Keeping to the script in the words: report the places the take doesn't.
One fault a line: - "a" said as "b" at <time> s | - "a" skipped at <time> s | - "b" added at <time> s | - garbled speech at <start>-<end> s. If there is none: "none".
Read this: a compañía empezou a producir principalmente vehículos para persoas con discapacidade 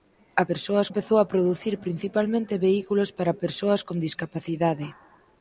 - "compañía" said as "persoas" at 0.5 s